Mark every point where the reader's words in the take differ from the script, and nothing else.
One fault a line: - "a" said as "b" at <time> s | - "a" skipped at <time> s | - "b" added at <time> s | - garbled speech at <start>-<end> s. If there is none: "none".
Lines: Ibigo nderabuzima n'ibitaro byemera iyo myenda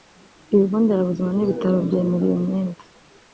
none